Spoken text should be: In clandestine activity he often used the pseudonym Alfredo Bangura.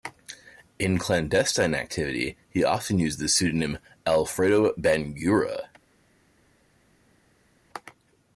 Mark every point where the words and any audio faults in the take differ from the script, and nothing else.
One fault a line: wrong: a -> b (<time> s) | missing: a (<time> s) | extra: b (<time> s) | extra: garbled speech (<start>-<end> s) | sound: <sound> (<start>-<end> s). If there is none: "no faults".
no faults